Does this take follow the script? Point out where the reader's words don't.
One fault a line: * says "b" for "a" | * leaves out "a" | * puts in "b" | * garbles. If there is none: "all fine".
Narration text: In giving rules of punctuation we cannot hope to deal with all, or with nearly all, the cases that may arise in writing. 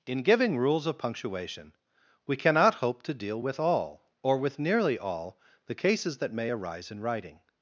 all fine